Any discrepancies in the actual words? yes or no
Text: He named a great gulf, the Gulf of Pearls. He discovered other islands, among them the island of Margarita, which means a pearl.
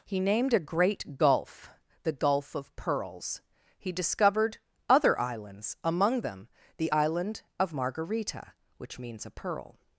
no